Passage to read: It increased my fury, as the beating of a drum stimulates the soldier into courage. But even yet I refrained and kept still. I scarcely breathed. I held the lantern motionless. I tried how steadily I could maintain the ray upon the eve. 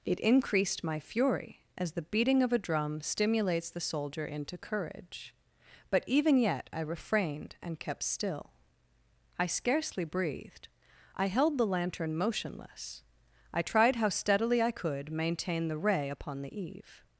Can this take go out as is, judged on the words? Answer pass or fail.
pass